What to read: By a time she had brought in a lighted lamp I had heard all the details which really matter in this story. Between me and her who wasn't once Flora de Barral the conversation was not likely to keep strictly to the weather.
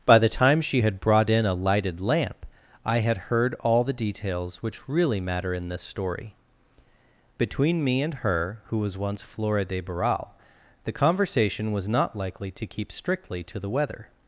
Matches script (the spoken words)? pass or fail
fail